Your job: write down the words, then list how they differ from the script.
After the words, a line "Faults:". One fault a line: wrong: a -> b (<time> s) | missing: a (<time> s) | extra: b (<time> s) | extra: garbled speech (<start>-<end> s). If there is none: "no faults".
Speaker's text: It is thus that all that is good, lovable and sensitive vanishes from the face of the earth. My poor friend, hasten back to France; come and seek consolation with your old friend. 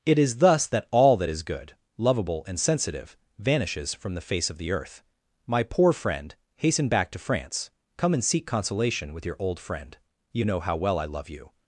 It is thus that all that is good, lovable and sensitive vanishes from the face of the earth. My poor friend, hasten back to France; come and seek consolation with your old friend. You know how well I love you
Faults:
extra: You know how well I love you (10.3 s)